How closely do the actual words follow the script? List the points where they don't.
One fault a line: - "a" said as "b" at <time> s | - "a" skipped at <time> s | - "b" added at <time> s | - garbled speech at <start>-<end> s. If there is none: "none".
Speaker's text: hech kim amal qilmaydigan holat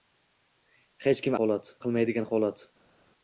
- "amal" said as "holat" at 1.4 s